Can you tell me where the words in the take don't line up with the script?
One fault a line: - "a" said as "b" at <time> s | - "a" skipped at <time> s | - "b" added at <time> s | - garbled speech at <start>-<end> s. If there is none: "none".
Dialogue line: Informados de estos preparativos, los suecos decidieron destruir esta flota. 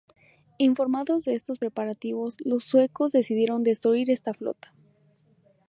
none